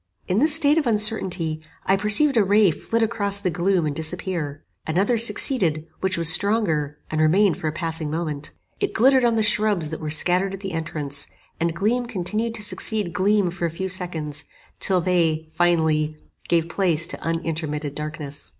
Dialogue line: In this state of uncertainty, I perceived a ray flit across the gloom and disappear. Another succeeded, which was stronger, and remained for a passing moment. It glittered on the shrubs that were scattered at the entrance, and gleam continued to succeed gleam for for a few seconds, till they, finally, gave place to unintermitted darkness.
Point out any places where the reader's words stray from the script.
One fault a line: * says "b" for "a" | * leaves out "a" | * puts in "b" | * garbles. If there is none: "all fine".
* leaves out "for"